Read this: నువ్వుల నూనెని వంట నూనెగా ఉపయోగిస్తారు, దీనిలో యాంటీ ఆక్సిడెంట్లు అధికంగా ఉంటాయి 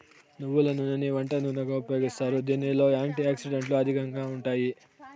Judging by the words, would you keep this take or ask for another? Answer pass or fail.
pass